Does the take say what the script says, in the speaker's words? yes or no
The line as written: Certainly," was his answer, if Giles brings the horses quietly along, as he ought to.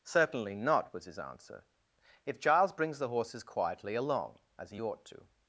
no